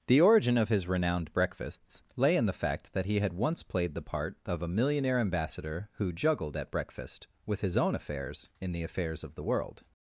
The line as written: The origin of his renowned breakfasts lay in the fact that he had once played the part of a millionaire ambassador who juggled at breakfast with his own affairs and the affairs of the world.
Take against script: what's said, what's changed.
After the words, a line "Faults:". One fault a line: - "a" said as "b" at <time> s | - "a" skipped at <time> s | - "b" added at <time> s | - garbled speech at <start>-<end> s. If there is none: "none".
The origin of his renowned breakfasts lay in the fact that he had once played the part of a millionaire ambassador who juggled at breakfast with his own affairs in the affairs of the world.
Faults:
- "and" said as "in" at 8.6 s